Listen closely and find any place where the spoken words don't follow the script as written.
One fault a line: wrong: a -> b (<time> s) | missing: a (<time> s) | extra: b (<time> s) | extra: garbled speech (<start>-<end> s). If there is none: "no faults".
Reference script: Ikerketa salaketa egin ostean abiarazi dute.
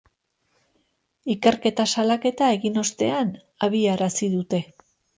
no faults